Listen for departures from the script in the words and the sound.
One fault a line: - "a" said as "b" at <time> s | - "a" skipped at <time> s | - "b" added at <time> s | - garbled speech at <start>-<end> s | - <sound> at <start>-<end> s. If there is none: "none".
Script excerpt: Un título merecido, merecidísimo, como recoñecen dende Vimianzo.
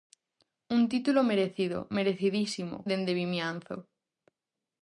- "como recoñecen" skipped at 2.9 s